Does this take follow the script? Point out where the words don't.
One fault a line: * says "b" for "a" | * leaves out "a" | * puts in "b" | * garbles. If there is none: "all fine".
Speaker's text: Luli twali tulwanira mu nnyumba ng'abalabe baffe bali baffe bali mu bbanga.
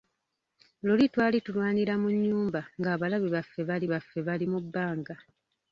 all fine